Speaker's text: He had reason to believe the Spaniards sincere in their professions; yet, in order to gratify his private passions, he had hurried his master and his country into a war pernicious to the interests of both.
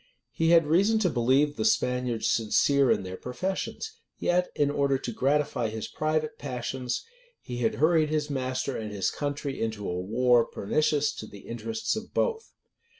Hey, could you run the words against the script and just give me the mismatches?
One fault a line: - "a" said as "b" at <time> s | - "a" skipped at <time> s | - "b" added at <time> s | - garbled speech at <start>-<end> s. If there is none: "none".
none